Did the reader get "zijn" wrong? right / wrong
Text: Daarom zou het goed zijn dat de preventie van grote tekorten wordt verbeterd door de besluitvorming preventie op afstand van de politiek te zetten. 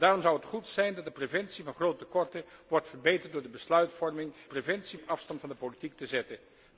right